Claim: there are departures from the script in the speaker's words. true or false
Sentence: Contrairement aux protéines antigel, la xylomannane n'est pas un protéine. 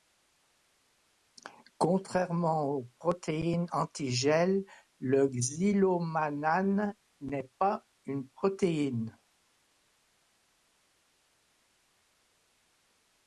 true